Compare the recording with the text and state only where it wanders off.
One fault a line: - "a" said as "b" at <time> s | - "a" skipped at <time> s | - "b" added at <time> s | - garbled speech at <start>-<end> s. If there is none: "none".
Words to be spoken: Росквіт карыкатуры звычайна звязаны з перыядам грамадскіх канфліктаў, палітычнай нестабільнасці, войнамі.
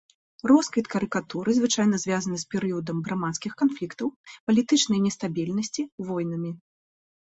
none